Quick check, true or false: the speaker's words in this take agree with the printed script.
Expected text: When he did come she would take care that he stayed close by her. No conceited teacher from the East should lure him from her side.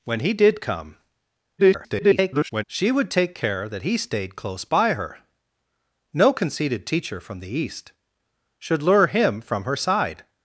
false